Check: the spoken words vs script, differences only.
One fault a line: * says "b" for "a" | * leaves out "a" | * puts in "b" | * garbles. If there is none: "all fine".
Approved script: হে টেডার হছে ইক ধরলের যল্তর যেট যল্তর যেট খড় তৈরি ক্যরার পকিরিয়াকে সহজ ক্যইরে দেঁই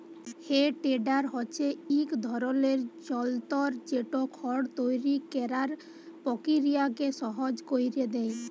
* leaves out "যল্তর যেট"